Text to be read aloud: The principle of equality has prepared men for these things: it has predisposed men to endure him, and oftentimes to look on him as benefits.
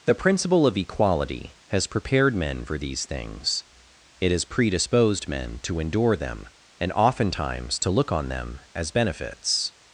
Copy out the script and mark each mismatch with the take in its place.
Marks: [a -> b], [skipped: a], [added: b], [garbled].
The principle of equality has prepared men for these things: it has predisposed men to endure [him, -> them] and oftentimes to look on [him -> them] as benefits.